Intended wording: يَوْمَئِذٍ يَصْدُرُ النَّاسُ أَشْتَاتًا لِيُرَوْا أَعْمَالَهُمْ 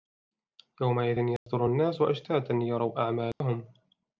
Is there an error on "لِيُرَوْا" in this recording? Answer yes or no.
no